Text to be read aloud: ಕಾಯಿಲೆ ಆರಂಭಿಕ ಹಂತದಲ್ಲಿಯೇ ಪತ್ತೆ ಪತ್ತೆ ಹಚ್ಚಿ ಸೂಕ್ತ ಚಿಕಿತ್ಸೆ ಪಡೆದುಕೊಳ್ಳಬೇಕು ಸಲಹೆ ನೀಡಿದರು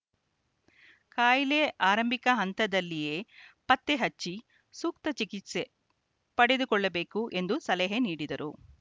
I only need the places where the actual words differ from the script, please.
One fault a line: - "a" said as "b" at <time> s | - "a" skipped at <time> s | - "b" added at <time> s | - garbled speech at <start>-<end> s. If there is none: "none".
- "ಪತ್ತೆ" skipped at 4.0 s
- "ಎಂದು" added at 7.3 s